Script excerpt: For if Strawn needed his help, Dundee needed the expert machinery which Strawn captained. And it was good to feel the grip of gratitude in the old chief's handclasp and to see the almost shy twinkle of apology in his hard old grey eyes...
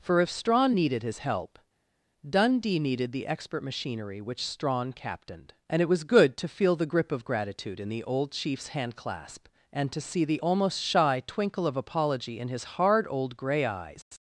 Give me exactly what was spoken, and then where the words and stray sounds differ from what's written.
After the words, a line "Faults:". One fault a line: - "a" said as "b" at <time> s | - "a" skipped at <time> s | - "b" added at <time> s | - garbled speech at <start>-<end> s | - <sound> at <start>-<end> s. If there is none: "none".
For if Strawn needed his help, Dundee needed the expert machinery which Strawn captained. And it was good to feel the grip of gratitude in the old chief's handclasp and to see the almost shy twinkle of apology in his hard old grey eyes...
Faults:
none